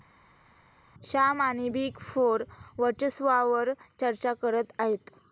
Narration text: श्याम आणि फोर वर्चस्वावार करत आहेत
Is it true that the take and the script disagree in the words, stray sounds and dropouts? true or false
true